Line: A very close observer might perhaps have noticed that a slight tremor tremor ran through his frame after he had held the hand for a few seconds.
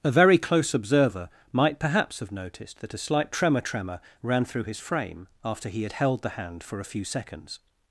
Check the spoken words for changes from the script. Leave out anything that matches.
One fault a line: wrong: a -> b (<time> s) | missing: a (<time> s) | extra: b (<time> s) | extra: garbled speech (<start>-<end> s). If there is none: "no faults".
no faults